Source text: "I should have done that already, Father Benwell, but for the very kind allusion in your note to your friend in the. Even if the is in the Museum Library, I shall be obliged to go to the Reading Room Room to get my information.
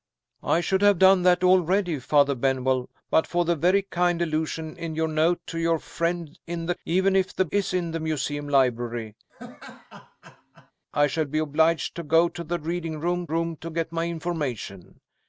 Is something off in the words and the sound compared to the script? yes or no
yes